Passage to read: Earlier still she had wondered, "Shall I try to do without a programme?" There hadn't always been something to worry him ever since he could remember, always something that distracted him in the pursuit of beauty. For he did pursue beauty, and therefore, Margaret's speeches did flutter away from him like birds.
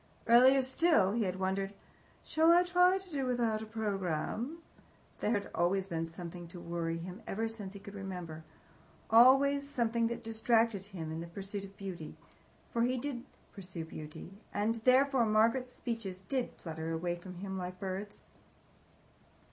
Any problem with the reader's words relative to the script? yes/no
yes